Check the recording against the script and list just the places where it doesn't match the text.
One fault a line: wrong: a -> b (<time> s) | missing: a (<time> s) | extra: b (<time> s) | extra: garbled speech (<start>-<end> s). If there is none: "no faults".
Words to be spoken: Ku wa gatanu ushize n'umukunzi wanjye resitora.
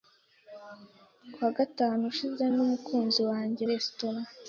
no faults